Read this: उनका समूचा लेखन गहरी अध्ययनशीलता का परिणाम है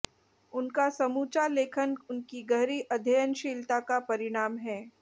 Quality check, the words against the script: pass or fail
fail